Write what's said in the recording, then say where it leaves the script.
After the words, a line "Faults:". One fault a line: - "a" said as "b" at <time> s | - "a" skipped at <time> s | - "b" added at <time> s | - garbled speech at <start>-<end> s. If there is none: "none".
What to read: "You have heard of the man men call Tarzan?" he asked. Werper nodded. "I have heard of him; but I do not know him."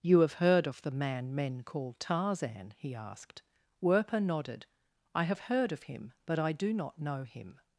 "You have heard of the man men call Tarzan?" he asked. Werper nodded. "I have heard of him; but I do not know him."
Faults:
none